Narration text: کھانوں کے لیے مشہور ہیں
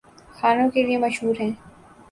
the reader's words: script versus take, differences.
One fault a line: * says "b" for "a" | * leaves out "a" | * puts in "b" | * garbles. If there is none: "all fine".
all fine